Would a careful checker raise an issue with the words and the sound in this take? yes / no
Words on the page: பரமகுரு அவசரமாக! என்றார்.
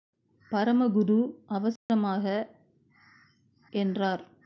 yes